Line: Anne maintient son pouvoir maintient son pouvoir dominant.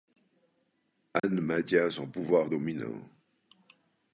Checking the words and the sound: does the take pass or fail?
fail